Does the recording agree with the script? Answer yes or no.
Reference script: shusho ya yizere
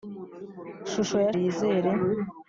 yes